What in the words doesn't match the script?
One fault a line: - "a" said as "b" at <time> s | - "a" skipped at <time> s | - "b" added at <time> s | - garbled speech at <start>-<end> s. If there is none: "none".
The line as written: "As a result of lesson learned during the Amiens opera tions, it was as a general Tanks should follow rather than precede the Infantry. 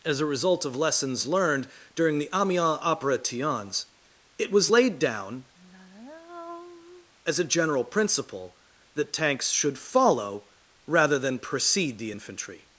- "lesson" said as "lessons" at 0.8 s
- "laid down" added at 4.7 s
- "principle that" added at 7.8 s